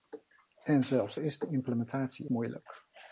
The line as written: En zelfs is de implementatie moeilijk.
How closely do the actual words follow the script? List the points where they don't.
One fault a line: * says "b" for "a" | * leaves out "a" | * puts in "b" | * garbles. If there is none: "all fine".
all fine